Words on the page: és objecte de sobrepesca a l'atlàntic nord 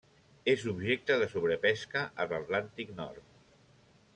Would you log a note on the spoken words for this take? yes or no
no